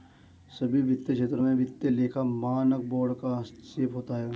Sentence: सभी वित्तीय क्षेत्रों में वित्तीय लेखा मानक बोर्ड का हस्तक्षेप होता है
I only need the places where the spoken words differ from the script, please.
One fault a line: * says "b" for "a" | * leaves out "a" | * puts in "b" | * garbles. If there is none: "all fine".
all fine